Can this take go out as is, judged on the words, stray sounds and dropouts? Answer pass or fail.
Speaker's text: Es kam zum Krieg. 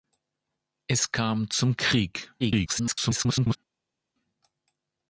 fail